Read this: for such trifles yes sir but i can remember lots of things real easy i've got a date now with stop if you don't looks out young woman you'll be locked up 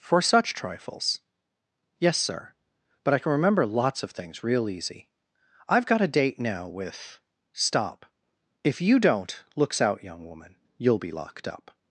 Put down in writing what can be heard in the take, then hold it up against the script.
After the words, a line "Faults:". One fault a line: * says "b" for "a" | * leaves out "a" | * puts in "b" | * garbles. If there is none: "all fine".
for such trifles yes sir but i can remember lots of things real easy i've got a date now with stop if you don't looks out young woman you'll be locked up
Faults:
all fine